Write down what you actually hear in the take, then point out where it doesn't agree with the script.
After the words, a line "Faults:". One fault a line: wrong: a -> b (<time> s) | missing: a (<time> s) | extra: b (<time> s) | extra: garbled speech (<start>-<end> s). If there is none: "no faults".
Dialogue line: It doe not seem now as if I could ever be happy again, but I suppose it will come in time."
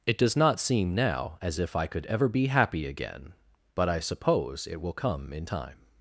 It does not seem now as if I could ever be happy again, but I suppose it will come in time."
Faults:
wrong: doe -> does (0.2 s)